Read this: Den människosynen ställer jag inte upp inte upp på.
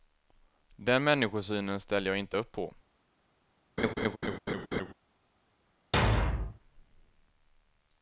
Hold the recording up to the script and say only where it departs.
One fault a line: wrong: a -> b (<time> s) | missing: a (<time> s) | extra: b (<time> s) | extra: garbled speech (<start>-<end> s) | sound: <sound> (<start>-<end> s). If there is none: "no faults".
missing: inte upp (2.5 s)
sound: laugh (3.8-4.9 s)
sound: thud (5.9-6.6 s)